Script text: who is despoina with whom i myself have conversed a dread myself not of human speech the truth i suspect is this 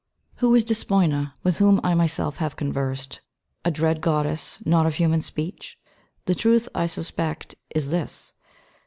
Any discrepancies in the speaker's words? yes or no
yes